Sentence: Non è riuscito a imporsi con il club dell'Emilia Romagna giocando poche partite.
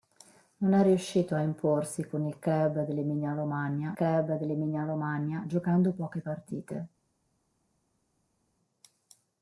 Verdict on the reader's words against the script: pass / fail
fail